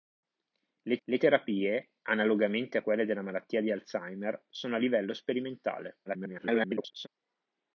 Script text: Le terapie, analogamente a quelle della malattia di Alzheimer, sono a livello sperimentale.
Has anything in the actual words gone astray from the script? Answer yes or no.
yes